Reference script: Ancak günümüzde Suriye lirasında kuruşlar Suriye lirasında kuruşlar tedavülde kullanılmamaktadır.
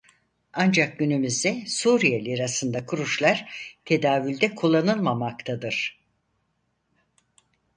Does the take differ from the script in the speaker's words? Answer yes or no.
yes